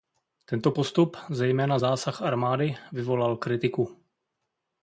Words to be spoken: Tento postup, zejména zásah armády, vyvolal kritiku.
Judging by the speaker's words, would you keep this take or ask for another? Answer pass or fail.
pass